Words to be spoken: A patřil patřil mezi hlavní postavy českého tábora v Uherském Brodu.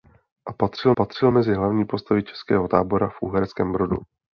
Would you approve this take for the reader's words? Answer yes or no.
yes